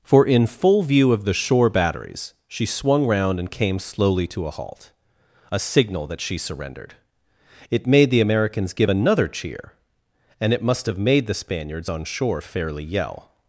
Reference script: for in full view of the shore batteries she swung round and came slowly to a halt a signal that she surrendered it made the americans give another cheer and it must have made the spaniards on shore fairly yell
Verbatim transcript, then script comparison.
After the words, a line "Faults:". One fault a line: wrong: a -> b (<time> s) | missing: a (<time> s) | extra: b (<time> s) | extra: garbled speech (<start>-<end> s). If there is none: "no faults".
for in full view of the shore batteries she swung round and came slowly to a halt a signal that she surrendered it made the americans give another cheer and it must have made the spaniards on shore fairly yell
Faults:
no faults